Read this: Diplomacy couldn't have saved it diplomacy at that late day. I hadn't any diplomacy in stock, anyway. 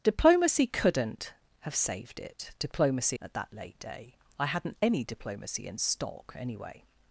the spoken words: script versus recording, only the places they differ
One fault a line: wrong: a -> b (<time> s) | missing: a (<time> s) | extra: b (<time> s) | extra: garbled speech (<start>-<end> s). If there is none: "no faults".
no faults